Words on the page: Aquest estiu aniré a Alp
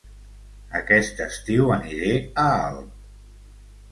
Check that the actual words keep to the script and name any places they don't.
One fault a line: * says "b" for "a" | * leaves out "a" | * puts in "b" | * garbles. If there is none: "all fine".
all fine